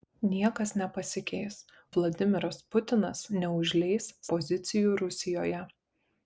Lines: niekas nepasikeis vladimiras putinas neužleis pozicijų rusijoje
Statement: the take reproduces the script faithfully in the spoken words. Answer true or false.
true